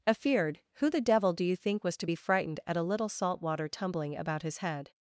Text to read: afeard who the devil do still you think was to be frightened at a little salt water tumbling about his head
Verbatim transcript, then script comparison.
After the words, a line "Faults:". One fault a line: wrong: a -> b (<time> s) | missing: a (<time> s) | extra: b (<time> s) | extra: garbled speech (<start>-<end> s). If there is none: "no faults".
afeard who the devil do you think was to be frightened at a little salt water tumbling about his head
Faults:
missing: still (1.4 s)